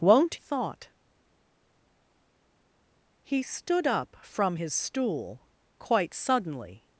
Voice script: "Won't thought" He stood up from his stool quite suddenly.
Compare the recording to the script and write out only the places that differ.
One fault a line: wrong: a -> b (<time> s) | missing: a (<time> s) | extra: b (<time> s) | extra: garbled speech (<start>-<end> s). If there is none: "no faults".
no faults